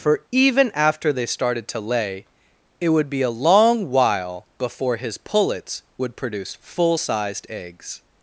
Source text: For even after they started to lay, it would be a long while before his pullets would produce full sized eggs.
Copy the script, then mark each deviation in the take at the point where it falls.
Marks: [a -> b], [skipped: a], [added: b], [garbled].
For even after they started to lay, it would be a long while before his pullets would produce full sized eggs.